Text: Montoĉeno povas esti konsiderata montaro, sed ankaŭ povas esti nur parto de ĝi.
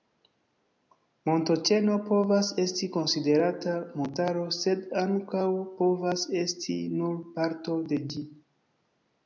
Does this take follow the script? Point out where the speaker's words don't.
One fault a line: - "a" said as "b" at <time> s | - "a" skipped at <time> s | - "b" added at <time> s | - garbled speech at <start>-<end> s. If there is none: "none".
none